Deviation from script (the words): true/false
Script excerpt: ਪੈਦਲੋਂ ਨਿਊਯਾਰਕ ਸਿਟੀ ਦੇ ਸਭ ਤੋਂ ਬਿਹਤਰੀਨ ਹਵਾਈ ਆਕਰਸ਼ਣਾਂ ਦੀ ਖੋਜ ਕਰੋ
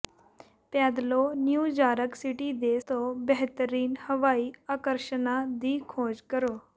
true